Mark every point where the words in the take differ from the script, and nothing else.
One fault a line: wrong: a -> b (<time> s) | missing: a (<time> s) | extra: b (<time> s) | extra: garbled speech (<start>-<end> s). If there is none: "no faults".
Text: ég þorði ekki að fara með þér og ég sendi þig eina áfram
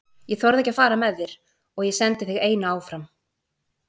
no faults